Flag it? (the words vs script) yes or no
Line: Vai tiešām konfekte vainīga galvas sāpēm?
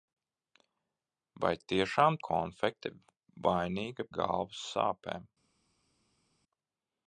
no